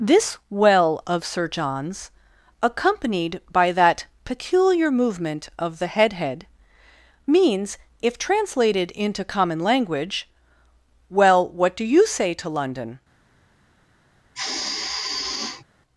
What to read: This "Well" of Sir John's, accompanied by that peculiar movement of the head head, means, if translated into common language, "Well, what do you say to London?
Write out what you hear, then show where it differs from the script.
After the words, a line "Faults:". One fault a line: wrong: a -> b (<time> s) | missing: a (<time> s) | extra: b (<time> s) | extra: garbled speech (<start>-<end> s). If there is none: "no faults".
This "Well" of Sir John's, accompanied by that peculiar movement of the head head, means, if translated into common language, "Well, what do you say to London?
Faults:
no faults